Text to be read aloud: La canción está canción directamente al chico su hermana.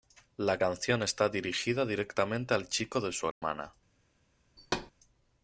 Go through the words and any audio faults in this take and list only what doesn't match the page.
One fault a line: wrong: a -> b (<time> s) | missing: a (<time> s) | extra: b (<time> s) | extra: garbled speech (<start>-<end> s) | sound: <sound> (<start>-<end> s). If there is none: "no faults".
wrong: canción -> dirigida (1.3 s)
extra: de (3.0 s)
sound: dropout (3.3-3.4 s)
sound: thud (4.6-4.9 s)